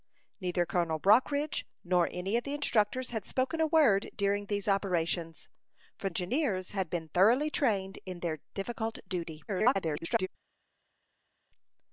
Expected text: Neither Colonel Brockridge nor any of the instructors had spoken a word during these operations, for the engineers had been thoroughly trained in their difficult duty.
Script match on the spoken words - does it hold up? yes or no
no